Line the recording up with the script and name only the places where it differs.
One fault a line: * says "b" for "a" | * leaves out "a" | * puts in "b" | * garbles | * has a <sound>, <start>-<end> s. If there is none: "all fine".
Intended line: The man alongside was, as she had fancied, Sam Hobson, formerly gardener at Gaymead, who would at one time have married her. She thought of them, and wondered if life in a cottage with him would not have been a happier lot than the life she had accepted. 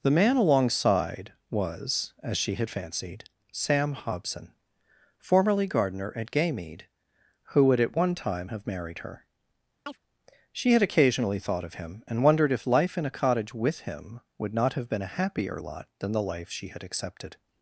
* has a chirp, 9.9-10.0 s
* puts in "had occasionally"
* says "him" for "them"